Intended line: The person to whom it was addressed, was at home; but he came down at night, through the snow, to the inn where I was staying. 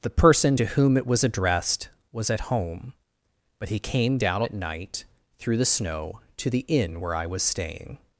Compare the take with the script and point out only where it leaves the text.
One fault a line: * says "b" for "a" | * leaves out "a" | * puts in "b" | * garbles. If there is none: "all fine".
all fine